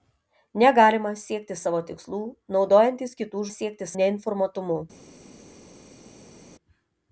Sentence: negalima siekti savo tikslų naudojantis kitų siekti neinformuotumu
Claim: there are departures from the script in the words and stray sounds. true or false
false